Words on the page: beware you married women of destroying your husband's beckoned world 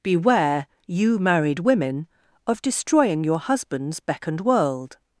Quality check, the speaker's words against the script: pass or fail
pass